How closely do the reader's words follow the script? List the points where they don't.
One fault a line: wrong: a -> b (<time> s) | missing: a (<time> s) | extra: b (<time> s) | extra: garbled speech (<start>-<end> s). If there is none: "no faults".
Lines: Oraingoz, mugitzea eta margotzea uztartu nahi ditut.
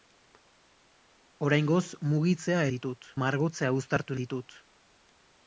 wrong: eta -> ditut (2.7 s)
missing: nahi (4.2 s)